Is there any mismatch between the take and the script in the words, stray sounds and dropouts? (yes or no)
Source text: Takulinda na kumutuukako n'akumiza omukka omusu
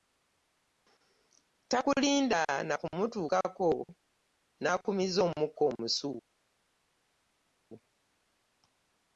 no